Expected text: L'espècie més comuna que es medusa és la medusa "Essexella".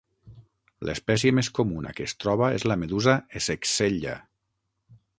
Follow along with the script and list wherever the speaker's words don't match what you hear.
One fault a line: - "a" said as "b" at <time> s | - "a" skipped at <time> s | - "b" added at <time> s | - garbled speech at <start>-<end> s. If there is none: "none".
- "medusa" said as "troba" at 2.2 s